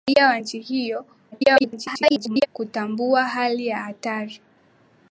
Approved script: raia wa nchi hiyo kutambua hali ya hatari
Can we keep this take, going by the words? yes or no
no